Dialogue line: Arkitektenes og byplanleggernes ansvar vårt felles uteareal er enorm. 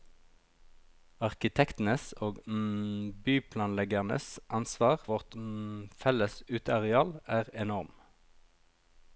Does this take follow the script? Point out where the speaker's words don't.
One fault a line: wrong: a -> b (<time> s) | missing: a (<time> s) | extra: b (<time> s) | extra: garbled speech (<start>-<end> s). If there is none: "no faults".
no faults